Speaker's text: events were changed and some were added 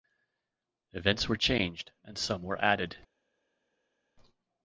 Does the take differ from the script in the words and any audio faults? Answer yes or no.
no